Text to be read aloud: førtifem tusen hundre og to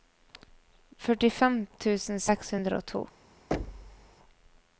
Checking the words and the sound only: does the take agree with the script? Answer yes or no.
no